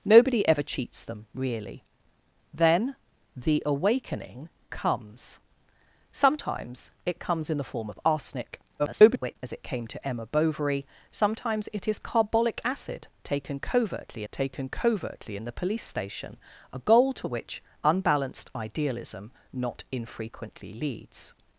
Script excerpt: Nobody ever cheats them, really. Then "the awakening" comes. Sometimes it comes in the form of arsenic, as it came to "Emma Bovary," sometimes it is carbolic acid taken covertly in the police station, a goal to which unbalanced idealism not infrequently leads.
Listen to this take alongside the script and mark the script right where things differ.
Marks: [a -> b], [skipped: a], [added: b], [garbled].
Nobody ever cheats them, really. Then "the awakening" comes. Sometimes it comes in the form of arsenic, [garbled] as it came to "Emma Bovary," sometimes it is carbolic acid taken covertly [added: taken covertly] in the police station, a goal to which unbalanced idealism not infrequently leads.